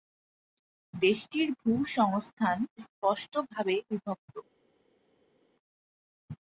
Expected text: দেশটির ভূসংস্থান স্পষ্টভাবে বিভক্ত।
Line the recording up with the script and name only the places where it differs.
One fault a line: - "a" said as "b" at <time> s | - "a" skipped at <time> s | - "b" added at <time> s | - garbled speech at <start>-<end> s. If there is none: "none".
none